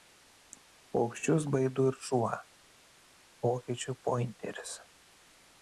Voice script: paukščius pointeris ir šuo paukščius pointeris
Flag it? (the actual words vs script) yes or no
yes